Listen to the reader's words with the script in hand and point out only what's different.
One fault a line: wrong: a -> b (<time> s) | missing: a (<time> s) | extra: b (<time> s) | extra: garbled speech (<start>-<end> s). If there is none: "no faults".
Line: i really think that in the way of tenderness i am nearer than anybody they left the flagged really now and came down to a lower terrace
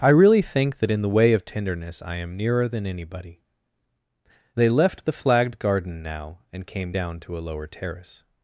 wrong: really -> garden (5.6 s)